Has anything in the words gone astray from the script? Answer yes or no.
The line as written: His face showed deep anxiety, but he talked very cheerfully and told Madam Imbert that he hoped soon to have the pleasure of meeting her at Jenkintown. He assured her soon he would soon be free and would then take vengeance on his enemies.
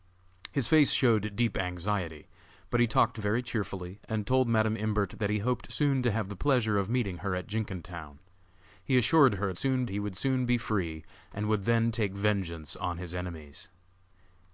no